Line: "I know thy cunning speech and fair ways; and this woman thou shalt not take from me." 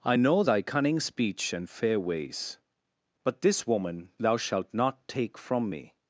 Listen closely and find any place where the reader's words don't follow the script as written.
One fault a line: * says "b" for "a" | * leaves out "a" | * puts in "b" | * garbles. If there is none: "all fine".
* says "but" for "and"